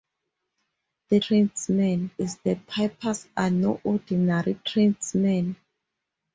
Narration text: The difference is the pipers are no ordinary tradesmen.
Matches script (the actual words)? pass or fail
fail